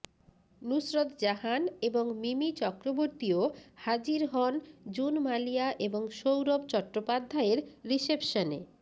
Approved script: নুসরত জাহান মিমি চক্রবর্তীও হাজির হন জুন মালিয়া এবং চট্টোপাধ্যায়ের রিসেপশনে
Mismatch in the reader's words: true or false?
true